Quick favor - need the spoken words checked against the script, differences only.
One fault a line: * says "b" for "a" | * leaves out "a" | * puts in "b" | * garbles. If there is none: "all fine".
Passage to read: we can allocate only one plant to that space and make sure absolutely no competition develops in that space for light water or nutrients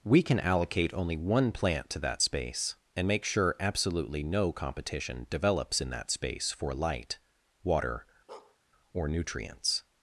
all fine